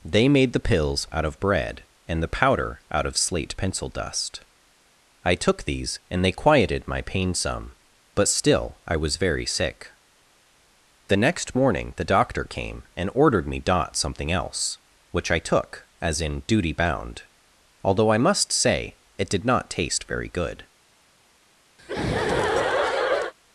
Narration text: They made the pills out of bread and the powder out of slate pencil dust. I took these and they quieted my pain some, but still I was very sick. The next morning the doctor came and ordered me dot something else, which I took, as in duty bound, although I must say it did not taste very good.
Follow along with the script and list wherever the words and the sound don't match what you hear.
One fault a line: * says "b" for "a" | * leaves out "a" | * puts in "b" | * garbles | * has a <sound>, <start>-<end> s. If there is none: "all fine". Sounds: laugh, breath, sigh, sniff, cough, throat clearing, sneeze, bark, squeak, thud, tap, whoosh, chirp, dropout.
* has a laugh, 21.8-23.3 s